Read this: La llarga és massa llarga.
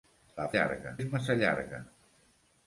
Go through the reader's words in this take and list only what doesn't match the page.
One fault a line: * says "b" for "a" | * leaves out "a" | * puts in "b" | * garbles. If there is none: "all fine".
all fine